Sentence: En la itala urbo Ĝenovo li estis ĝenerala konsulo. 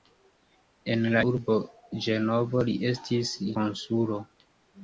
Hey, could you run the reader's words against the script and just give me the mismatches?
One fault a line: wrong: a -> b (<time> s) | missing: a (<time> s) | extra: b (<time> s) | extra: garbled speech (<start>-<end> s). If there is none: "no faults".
missing: itala (1.2 s)
missing: ĝenerala (3.3 s)